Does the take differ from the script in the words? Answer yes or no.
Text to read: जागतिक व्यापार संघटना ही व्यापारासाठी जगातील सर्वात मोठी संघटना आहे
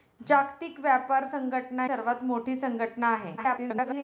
yes